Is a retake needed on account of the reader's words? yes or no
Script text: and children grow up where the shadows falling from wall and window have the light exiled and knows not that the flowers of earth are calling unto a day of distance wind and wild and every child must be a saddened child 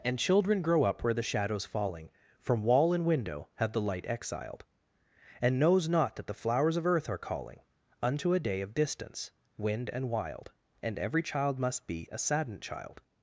no